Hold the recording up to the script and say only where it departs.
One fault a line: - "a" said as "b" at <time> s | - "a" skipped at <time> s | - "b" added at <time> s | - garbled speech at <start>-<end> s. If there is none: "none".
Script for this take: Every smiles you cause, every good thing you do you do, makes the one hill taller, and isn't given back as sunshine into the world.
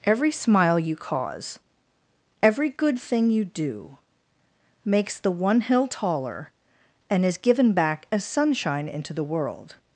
- "smiles" said as "smile" at 0.3 s
- "you do" skipped at 4.0 s
- "isn't" said as "is" at 7.2 s